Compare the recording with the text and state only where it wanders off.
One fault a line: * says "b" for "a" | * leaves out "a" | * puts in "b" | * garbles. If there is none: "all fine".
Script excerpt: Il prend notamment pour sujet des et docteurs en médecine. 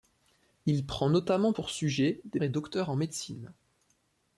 all fine